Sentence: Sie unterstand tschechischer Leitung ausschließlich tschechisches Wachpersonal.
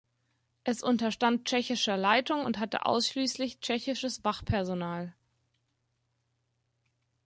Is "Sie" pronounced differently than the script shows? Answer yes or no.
yes